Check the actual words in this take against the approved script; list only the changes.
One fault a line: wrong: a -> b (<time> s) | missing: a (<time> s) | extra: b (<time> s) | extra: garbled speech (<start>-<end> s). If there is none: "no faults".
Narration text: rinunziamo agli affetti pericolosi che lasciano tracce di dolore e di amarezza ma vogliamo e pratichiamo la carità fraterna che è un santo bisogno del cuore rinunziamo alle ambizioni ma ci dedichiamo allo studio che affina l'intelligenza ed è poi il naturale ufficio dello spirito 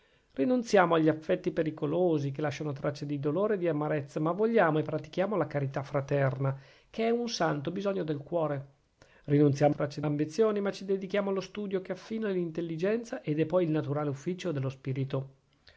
wrong: alle -> tracce (9.7 s)